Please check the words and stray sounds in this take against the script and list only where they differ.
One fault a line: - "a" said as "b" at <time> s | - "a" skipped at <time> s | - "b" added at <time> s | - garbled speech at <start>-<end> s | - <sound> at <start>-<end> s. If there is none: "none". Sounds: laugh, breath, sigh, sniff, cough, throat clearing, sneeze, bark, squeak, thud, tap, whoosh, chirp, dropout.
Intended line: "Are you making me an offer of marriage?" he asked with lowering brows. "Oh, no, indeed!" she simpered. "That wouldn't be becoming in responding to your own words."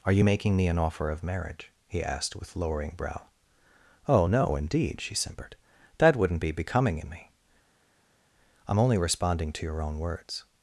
- "brows" said as "brow" at 2.9 s
- "me I'm only" added at 7.1 s